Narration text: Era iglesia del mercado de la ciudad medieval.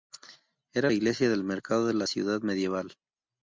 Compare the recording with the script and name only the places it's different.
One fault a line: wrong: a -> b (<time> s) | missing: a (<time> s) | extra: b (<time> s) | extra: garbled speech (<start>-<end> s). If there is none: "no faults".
no faults